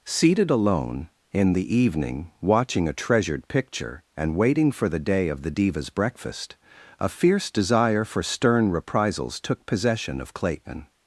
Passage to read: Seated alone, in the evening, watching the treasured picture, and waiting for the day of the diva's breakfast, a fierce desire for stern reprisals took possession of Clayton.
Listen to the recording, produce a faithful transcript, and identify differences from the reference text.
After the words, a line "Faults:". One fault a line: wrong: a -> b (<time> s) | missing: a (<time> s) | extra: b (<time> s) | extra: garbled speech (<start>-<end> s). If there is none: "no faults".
Seated alone, in the evening, watching a treasured picture, and waiting for the day of the diva's breakfast, a fierce desire for stern reprisals took possession of Clayton.
Faults:
wrong: the -> a (2.9 s)